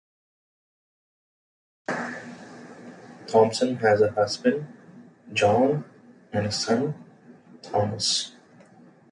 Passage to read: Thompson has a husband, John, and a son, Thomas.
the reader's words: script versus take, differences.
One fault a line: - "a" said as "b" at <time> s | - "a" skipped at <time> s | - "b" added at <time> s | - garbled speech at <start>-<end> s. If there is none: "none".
none